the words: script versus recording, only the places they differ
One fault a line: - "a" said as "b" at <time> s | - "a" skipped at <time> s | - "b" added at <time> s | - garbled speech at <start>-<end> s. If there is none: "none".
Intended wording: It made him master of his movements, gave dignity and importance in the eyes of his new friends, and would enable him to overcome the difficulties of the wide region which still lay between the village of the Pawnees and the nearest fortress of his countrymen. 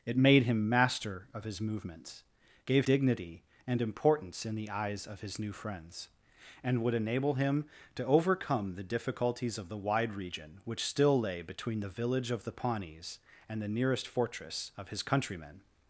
none